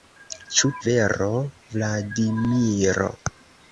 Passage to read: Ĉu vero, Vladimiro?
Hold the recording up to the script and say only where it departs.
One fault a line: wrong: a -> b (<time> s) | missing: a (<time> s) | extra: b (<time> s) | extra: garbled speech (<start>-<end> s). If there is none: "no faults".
no faults